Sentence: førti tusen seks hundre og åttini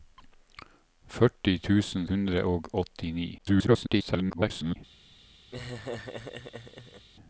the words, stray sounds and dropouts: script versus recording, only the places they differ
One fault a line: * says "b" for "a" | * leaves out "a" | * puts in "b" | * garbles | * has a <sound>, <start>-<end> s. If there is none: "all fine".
* leaves out "seks"
* garbles
* has a laugh, 5.5-7.1 s